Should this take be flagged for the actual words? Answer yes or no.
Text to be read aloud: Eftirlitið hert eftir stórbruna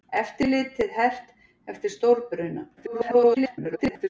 yes